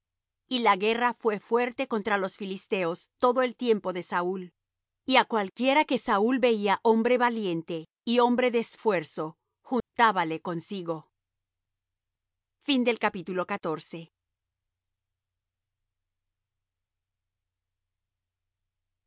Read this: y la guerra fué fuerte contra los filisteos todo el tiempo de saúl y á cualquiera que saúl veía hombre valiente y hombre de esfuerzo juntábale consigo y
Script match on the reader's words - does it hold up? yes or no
yes